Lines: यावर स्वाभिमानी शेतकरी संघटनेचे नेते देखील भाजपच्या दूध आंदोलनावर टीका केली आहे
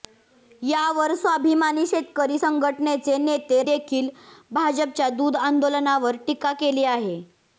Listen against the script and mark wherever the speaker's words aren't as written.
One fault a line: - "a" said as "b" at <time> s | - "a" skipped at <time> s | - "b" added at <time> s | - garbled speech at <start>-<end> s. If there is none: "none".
none